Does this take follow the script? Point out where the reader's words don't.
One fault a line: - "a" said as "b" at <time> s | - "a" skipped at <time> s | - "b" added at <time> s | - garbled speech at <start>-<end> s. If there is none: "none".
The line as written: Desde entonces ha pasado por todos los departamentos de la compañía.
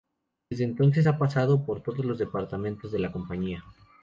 none